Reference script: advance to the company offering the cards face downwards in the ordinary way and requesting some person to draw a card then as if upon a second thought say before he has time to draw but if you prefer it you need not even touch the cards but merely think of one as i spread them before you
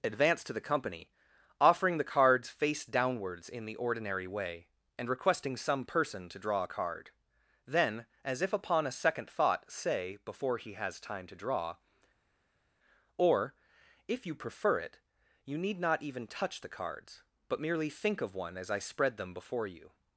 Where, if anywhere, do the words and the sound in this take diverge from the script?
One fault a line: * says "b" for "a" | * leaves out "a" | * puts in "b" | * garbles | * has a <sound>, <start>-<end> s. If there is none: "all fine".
* says "or" for "but"